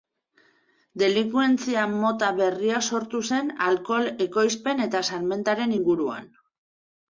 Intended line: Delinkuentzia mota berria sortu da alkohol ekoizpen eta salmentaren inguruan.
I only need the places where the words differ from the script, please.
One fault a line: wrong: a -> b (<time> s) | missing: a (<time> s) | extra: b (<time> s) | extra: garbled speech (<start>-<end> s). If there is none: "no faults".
wrong: da -> zen (3.3 s)